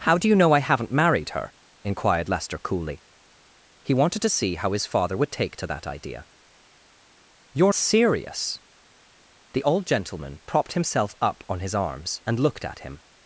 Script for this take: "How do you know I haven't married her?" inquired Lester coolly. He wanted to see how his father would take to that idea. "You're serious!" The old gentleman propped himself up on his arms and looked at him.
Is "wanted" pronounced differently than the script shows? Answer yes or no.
no